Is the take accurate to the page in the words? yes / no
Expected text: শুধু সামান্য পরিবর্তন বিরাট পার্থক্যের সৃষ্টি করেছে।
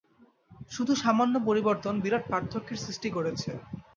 yes